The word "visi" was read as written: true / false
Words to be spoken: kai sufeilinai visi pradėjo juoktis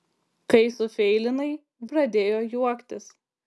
false